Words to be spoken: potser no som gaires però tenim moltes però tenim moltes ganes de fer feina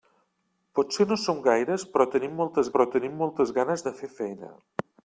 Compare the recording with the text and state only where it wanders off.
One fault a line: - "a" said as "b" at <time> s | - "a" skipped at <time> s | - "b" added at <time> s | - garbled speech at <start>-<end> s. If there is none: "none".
none